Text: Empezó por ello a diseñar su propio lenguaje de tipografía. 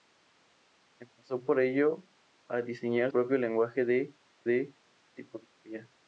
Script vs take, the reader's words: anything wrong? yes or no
yes